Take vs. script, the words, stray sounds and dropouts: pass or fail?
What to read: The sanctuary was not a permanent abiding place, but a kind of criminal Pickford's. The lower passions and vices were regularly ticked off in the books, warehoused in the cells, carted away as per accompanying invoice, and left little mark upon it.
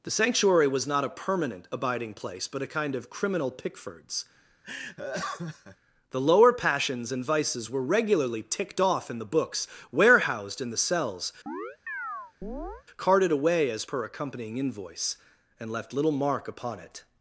fail